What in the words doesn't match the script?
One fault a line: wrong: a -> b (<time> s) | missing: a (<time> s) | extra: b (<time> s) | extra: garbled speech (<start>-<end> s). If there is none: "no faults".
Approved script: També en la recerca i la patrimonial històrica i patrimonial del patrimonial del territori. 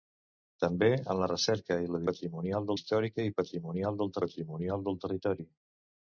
no faults